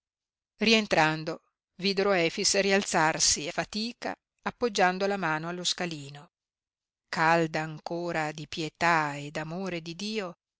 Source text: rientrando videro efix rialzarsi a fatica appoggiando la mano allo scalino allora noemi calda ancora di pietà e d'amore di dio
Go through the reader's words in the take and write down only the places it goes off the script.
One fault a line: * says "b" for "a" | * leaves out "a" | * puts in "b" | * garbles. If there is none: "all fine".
* leaves out "a"
* leaves out "allora noemi"